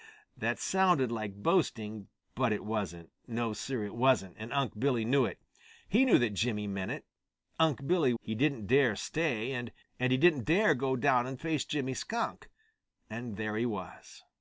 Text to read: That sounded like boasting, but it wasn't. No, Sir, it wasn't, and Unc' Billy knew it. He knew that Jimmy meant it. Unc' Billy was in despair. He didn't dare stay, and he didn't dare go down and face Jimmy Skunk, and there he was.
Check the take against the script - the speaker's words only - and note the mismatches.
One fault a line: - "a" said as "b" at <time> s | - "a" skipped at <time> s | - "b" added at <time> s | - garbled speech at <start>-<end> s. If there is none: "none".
- "was in despair" skipped at 8.1 s